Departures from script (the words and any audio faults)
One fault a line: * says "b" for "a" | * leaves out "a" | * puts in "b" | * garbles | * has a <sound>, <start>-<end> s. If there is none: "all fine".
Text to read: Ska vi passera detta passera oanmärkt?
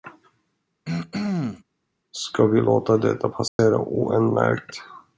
* has a throat clearing, 0.8-1.6 s
* says "låta" for "passera"
* has a dropout, 3.5-3.6 s